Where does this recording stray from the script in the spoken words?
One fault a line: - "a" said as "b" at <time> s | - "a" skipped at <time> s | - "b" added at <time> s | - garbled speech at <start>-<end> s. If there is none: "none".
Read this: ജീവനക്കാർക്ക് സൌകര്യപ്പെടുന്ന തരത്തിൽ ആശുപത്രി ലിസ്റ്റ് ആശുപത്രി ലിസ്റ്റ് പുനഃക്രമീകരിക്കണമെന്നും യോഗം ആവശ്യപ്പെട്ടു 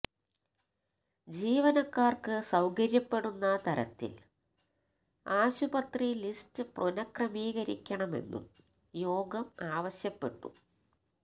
- "ആശുപത്രി ലിസ്റ്റ്" skipped at 6.6 s